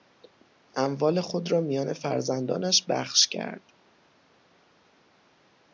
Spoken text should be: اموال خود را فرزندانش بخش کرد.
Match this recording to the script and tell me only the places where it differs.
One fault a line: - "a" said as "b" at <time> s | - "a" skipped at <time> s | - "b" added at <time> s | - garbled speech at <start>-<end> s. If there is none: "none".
- "میان" added at 1.6 s